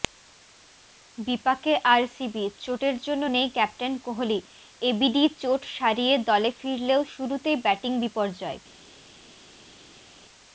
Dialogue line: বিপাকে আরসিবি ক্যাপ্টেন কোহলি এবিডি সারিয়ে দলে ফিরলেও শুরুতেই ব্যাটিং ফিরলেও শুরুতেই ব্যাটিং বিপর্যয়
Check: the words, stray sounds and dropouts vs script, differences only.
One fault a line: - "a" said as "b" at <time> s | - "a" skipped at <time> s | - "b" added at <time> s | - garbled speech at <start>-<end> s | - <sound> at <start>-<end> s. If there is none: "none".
- "চোটের জন্য নেই" added at 2.6 s
- "চোট" added at 5.4 s
- "ফিরলেও শুরুতেই ব্যাটিং" skipped at 7.9 s